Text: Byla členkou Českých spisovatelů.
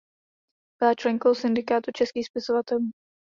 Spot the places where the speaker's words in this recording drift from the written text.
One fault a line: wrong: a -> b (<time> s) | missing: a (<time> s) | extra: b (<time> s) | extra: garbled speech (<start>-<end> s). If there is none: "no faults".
extra: Syndikátu (1.4 s)